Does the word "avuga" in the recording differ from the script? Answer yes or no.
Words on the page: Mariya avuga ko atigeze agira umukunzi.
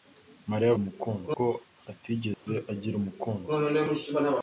yes